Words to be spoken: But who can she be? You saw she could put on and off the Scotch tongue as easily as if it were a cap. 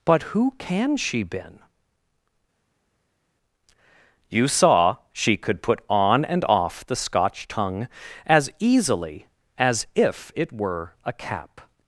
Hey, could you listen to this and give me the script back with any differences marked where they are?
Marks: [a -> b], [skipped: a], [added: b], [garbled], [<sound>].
But who can she [be? -> been] You saw she could put on and off the Scotch tongue as easily as if it were a cap.